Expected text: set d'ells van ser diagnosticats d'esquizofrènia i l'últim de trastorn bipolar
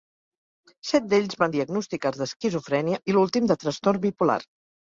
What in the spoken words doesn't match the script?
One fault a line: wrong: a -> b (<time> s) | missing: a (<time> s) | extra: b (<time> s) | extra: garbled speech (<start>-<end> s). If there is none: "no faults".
missing: ser (1.5 s)